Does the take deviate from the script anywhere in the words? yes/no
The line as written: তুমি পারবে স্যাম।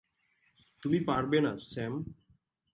yes